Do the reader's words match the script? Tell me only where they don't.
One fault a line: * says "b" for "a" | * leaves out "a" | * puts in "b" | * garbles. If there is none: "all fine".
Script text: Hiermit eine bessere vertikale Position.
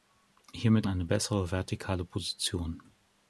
all fine